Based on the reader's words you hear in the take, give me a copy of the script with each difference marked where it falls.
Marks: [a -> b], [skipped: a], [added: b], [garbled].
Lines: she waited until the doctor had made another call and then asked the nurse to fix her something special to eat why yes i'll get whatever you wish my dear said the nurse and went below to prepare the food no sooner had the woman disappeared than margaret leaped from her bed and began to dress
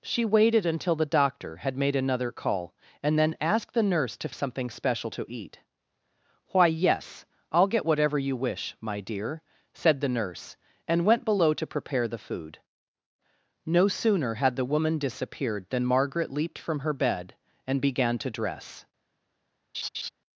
she waited until the doctor had made another call and then asked the nurse to [skipped: fix her] something special to eat why yes i'll get whatever you wish my dear said the nurse and went below to prepare the food no sooner had the woman disappeared than margaret leaped from her bed and began to dress